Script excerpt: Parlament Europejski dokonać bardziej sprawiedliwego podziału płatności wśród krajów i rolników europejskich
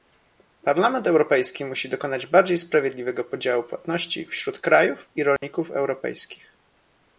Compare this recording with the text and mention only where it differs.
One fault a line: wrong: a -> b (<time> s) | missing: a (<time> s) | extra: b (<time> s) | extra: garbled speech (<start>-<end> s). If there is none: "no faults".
extra: musi (1.6 s)